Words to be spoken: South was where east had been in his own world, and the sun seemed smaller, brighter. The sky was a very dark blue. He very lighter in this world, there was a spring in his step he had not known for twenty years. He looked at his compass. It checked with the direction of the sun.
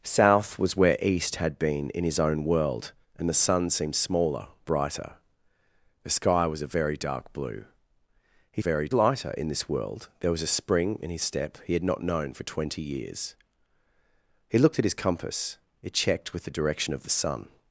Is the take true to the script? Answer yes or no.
yes